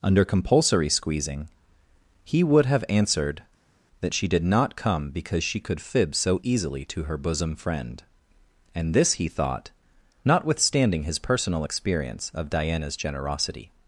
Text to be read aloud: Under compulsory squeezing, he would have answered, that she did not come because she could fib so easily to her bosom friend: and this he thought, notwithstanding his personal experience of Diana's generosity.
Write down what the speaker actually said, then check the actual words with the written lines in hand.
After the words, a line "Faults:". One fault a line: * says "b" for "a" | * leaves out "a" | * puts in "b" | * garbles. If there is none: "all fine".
Under compulsory squeezing, he would have answered, that she did not come because she could fib so easily to her bosom friend: and this he thought, notwithstanding his personal experience of Diana's generosity.
Faults:
all fine